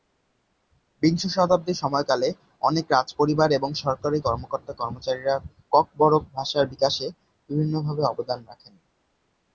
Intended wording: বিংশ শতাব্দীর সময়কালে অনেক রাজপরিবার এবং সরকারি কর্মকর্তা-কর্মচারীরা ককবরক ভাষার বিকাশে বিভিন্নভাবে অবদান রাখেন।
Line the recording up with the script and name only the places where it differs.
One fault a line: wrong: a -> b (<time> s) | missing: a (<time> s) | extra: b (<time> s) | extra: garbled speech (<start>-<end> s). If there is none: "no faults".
no faults